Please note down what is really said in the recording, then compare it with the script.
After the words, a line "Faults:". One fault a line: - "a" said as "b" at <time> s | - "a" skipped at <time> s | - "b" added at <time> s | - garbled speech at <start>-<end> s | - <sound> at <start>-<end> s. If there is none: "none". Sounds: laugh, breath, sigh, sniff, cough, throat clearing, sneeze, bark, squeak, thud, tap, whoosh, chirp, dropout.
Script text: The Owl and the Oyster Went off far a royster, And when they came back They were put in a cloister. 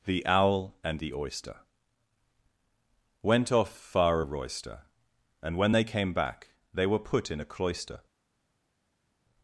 The Owl and the Oyster Went off far a royster, And when they came back They were put in a cloister.
Faults:
none